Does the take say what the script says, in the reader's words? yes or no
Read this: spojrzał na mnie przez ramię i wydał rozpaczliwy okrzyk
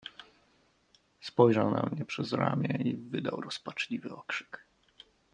yes